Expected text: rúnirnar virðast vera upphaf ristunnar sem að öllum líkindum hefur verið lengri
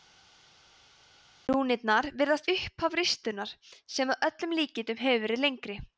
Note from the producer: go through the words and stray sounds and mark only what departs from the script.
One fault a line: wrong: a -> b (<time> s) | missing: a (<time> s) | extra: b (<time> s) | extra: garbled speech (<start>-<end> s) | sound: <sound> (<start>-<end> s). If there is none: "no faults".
missing: vera (2.5 s)